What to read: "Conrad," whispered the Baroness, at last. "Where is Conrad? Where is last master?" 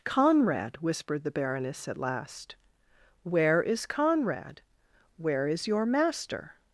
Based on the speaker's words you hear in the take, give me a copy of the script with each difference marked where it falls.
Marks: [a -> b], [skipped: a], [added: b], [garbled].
"Conrad," whispered the Baroness, at last. "Where is Conrad? Where is [last -> your] master?"